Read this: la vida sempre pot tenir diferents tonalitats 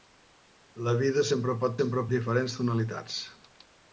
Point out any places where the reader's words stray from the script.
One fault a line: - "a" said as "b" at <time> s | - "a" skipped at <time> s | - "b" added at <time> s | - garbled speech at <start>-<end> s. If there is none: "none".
- "tenir" said as "sempre" at 1.8 s